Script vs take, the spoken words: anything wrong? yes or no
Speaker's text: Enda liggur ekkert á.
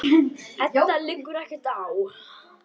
no